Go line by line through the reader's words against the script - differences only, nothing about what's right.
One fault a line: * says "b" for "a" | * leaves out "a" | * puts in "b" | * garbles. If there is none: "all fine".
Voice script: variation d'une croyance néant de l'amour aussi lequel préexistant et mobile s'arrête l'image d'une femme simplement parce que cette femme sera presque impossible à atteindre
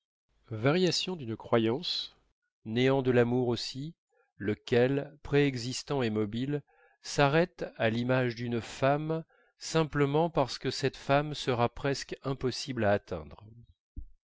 * puts in "à"